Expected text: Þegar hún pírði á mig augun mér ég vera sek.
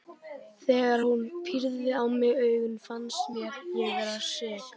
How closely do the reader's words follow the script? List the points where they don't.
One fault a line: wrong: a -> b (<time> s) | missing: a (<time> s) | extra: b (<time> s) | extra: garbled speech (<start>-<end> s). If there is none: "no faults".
extra: fannst (2.9 s)